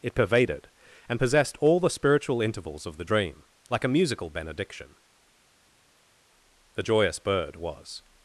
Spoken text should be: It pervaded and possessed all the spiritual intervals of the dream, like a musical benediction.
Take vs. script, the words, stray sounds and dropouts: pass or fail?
fail